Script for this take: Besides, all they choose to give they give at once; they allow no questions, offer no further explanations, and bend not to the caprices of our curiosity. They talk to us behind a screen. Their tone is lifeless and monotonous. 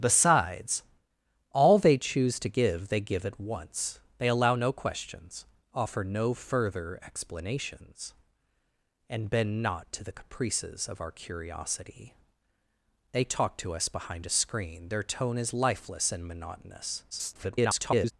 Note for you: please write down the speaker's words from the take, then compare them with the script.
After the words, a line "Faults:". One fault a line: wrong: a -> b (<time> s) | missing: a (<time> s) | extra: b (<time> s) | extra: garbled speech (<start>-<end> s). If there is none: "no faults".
Besides, all they choose to give they give at once; they allow no questions, offer no further explanations, and bend not to the caprices of our curiosity. They talk to us behind a screen. Their tone is lifeless and monotonous. [garbled]
Faults:
extra: garbled speech (17.1-18.1 s)